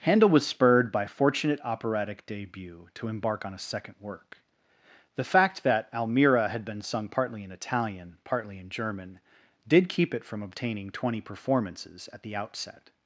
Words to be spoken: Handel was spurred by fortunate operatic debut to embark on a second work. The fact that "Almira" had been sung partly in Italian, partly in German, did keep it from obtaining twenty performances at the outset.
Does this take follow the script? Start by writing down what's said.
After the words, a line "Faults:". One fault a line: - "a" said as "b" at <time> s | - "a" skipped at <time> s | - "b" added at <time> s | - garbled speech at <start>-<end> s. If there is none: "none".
Handel was spurred by fortunate operatic debut to embark on a second work. The fact that "Almira" had been sung partly in Italian, partly in German, did keep it from obtaining twenty performances at the outset.
Faults:
none